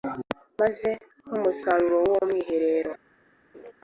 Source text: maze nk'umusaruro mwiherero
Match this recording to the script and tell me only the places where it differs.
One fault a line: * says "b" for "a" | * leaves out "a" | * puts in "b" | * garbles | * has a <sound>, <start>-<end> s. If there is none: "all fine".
* puts in "w'uwo"
* has a laugh, 3.5-3.7 s